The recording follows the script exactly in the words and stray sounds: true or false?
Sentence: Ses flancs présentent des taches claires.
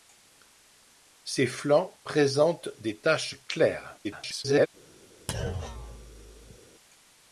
false